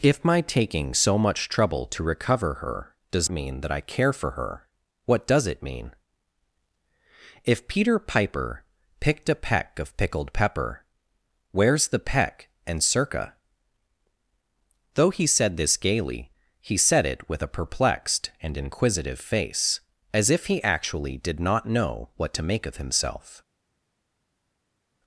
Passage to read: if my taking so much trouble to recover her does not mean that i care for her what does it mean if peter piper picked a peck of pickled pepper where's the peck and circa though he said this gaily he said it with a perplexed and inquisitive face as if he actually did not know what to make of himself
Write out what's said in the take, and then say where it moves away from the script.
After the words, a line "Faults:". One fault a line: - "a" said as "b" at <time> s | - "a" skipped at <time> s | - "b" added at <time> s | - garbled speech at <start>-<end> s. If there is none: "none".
if my taking so much trouble to recover her does mean that i care for her what does it mean if peter piper picked a peck of pickled pepper where's the peck and circa though he said this gaily he said it with a perplexed and inquisitive face as if he actually did not know what to make of himself
Faults:
- "not" skipped at 3.3 s